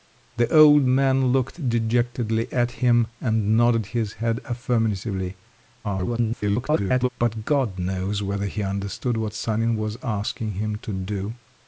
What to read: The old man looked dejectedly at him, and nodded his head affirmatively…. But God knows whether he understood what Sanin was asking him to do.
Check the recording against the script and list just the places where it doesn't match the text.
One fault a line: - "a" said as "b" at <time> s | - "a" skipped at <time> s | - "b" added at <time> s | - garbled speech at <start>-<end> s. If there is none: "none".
- garbled speech at 5.8-7.1 s